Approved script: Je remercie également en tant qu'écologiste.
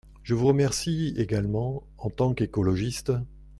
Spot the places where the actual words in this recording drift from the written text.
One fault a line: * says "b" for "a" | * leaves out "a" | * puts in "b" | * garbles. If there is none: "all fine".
* puts in "vous"